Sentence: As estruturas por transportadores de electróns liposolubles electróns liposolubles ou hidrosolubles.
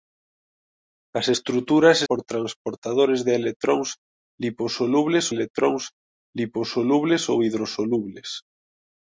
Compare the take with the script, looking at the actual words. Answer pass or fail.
pass